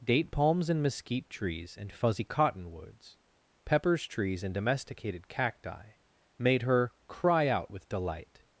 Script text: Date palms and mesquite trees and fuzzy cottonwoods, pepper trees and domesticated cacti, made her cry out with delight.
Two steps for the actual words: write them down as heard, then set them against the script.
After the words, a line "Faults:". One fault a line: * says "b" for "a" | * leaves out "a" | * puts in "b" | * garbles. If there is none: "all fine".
Date palms and mesquite trees and fuzzy cottonwoods, peppers trees and domesticated cacti, made her cry out with delight.
Faults:
* says "peppers" for "pepper"